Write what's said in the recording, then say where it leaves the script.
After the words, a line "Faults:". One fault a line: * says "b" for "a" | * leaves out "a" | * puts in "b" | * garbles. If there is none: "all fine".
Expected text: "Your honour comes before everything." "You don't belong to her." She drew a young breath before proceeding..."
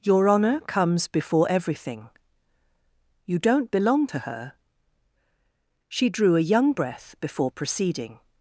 "Your honour comes before everything." "You don't belong to her." She drew a young breath before proceeding..."
Faults:
all fine